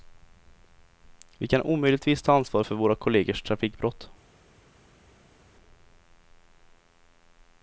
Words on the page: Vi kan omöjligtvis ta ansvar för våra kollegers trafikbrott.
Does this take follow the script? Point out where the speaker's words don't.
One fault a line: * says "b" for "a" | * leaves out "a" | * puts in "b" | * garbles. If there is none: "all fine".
all fine